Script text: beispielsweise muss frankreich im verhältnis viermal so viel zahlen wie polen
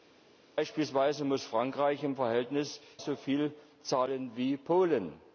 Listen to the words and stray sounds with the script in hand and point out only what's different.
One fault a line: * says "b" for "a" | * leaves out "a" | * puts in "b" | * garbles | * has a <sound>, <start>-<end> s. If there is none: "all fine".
* leaves out "viermal"